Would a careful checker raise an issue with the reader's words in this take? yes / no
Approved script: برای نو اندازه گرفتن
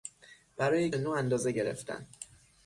no